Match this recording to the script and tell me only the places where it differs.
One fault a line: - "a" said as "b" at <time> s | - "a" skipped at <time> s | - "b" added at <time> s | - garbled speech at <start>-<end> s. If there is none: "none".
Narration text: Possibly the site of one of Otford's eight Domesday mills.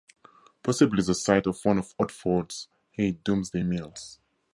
none